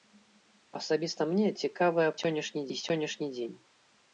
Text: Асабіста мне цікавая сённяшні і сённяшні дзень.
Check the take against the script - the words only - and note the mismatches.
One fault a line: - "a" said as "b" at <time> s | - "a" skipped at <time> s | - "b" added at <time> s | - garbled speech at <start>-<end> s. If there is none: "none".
none